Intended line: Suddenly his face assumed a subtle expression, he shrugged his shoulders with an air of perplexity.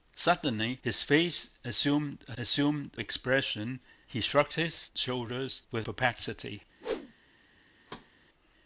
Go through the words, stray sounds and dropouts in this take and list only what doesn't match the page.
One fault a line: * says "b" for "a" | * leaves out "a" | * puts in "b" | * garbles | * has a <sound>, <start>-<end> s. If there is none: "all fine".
* says "assumed" for "subtle"
* leaves out "an air of"
* has a whoosh, 6.8-7.1 s
* has a thud, 7.9-8.1 s